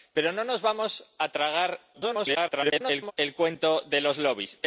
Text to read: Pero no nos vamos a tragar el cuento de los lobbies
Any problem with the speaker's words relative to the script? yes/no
yes